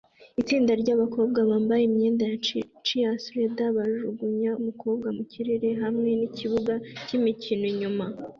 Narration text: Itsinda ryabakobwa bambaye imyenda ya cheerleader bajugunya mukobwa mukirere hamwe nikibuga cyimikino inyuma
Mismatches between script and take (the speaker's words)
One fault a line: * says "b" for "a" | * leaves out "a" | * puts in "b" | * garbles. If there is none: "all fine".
all fine